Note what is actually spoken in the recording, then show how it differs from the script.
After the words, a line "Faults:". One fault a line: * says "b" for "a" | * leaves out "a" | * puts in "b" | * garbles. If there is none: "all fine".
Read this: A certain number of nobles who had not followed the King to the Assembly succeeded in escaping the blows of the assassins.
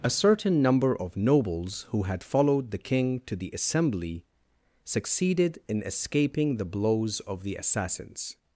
A certain number of nobles who had followed the King to the Assembly succeeded in escaping the blows of the assassins.
Faults:
* leaves out "not"